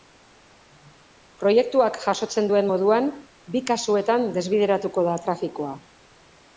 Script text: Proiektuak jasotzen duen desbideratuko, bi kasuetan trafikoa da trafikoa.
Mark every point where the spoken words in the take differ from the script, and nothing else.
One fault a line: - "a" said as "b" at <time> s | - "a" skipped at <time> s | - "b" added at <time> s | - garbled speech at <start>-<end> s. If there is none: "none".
- "desbideratuko" said as "moduan" at 2.7 s
- "trafikoa" said as "desbideratuko" at 4.4 s